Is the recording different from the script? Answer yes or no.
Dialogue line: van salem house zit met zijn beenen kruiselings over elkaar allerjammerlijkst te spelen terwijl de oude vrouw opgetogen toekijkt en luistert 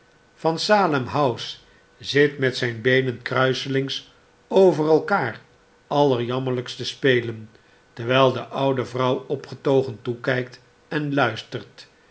no